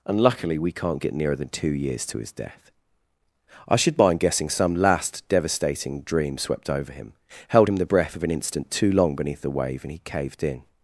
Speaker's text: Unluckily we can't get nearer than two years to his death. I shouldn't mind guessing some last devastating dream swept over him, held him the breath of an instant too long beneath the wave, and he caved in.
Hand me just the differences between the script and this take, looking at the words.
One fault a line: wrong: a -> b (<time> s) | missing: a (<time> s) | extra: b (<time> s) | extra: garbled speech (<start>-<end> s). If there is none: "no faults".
wrong: shouldn't -> should (3.8 s)